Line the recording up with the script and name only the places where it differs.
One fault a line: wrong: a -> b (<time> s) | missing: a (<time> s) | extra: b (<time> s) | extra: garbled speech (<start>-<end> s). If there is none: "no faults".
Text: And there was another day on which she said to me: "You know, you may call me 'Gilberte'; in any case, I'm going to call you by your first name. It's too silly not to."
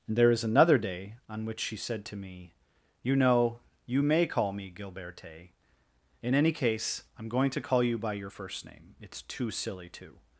wrong: was -> is (0.3 s)
missing: not (9.9 s)